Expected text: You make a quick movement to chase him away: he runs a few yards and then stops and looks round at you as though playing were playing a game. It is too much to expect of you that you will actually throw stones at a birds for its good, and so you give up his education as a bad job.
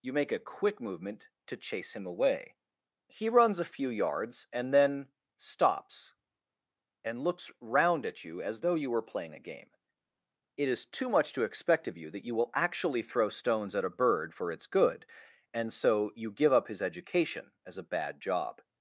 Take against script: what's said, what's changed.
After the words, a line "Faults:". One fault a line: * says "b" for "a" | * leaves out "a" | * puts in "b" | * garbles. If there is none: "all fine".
You make a quick movement to chase him away: he runs a few yards and then stops and looks round at you as though you were playing a game. It is too much to expect of you that you will actually throw stones at a bird for its good, and so you give up his education as a bad job.
Faults:
* says "you" for "playing"
* says "bird" for "birds"